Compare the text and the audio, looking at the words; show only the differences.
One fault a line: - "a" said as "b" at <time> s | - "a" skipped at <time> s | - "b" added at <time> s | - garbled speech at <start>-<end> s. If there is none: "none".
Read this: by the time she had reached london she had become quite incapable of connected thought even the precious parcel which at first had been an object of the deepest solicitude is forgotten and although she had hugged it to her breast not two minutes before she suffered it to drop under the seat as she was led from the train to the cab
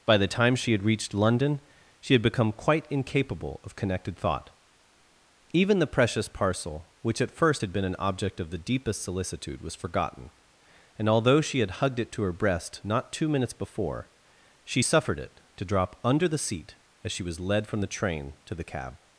- "is" said as "was" at 9.6 s